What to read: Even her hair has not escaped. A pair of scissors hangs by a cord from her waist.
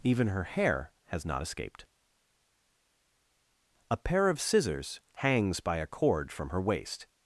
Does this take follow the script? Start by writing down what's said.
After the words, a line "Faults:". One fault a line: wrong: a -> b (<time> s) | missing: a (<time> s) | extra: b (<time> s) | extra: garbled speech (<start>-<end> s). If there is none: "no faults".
Even her hair has not escaped. A pair of scissors hangs by a cord from her waist.
Faults:
no faults